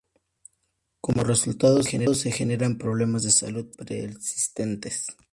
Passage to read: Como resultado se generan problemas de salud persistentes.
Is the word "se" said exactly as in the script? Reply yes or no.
no